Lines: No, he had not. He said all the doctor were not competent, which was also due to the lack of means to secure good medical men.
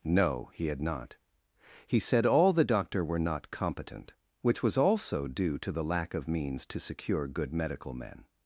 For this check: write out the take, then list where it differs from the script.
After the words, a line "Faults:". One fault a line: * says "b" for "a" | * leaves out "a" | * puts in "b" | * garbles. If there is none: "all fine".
No, he had not. He said all the doctor were not competent, which was also due to the lack of means to secure good medical men.
Faults:
all fine